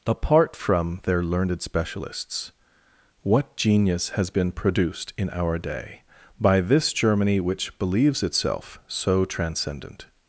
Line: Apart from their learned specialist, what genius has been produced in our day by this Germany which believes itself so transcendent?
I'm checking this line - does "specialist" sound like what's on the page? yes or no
no